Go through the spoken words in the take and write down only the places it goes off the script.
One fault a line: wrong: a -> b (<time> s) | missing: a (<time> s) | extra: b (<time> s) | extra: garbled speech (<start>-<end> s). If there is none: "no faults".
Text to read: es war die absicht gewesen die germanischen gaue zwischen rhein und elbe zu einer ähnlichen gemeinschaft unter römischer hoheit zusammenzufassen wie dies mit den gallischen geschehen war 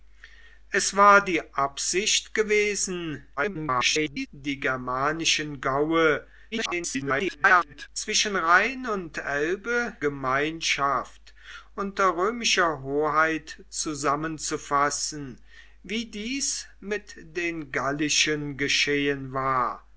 extra: garbled speech (3.4-4.3 s)
extra: garbled speech (6.5-7.9 s)
missing: zu einer ähnlichen (10.0 s)